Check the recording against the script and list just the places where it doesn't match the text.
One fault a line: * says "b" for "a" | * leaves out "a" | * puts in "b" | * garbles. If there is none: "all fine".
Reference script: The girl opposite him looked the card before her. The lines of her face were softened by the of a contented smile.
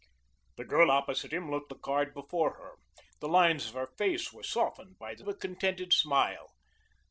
all fine